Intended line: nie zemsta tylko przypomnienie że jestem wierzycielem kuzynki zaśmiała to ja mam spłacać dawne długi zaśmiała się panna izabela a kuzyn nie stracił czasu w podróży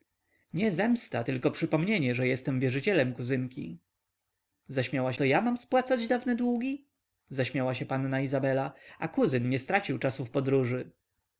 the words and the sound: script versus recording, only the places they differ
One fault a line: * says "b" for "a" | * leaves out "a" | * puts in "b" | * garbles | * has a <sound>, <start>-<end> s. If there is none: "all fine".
all fine